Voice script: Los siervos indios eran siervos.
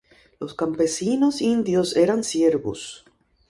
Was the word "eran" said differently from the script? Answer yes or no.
no